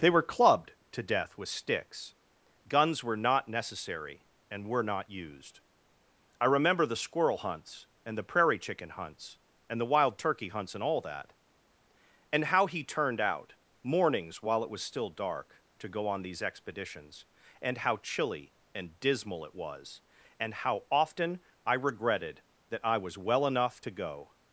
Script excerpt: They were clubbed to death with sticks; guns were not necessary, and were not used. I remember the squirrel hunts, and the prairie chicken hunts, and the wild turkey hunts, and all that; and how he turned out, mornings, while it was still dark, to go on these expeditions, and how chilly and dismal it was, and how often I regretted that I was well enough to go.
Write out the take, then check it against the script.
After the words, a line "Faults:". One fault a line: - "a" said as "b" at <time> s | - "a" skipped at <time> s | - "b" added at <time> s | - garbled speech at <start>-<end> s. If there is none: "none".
They were clubbed to death with sticks; guns were not necessary, and were not used. I remember the squirrel hunts, and the prairie chicken hunts, and the wild turkey hunts, and all that; and how he turned out, mornings, while it was still dark, to go on these expeditions, and how chilly and dismal it was, and how often I regretted that I was well enough to go.
Faults:
none